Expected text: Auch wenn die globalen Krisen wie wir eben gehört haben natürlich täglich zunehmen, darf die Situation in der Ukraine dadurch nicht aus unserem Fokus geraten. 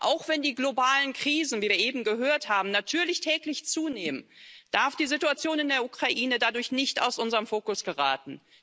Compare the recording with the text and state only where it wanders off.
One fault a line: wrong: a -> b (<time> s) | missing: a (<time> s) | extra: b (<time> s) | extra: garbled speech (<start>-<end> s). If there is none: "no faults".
no faults